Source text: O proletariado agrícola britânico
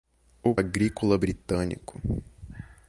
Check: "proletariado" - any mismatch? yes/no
yes